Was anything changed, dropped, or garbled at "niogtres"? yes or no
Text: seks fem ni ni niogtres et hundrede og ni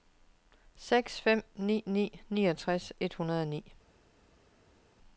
no